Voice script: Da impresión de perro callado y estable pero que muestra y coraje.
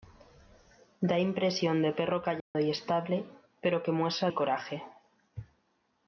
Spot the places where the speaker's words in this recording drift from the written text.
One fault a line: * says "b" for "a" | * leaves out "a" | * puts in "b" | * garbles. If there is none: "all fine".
all fine